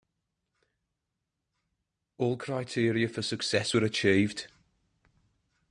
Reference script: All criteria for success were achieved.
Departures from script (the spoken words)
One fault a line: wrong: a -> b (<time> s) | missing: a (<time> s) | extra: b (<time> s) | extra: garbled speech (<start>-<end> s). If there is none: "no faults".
no faults